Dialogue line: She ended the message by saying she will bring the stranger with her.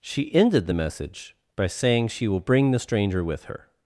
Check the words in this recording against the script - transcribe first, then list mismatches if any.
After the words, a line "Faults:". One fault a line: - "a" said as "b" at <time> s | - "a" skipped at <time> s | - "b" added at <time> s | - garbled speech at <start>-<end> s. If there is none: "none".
She ended the message by saying she will bring the stranger with her.
Faults:
none